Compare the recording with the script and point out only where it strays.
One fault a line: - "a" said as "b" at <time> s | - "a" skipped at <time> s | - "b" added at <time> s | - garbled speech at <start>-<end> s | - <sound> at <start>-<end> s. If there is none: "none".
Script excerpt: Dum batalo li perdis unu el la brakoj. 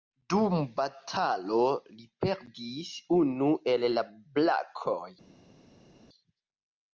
none